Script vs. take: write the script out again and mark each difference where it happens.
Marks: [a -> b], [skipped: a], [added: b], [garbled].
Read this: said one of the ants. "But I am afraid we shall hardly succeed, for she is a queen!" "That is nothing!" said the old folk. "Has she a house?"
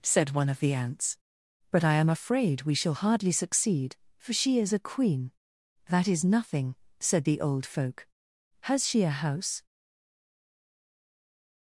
said one of the ants. "But I am afraid we shall hardly succeed, for she is a queen!" "That is nothing!" said the old folk. "Has she a house?"